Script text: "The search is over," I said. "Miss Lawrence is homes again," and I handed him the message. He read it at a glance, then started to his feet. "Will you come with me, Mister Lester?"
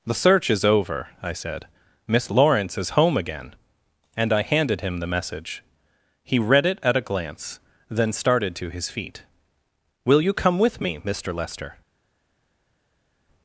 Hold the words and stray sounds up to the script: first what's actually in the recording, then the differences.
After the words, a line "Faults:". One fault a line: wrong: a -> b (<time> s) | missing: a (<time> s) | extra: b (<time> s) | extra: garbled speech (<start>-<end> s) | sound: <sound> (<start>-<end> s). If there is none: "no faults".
"The search is over," I said. "Miss Lawrence is home again," and I handed him the message. He read it at a glance, then started to his feet. "Will you come with me, Mister Lester?"
Faults:
wrong: homes -> home (3.0 s)